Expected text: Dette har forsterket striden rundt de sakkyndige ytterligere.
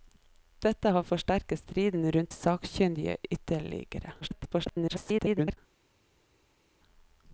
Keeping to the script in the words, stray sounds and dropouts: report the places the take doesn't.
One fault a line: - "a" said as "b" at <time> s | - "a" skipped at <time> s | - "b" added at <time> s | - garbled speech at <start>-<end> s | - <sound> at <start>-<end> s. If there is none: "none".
- "de" skipped at 2.3 s
- garbled speech at 4.2-5.6 s